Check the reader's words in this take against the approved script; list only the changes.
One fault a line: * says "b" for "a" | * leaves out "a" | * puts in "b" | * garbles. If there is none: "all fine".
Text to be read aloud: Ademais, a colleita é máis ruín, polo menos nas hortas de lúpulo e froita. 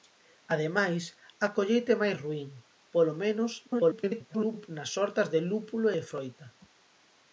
* garbles